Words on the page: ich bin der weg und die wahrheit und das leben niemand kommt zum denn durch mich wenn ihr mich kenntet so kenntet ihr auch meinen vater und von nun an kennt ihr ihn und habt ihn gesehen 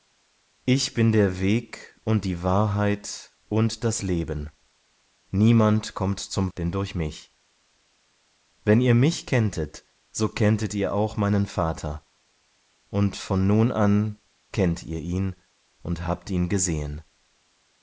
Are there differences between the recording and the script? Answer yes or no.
no